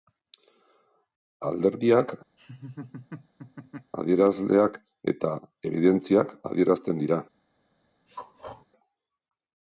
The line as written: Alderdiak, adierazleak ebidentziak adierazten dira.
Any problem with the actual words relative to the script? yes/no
yes